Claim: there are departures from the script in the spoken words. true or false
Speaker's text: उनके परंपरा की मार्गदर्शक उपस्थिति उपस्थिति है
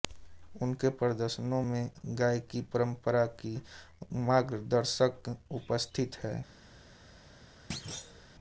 true